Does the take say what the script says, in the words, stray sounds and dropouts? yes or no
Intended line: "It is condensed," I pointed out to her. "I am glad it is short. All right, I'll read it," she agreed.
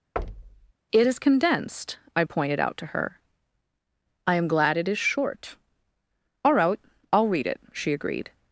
no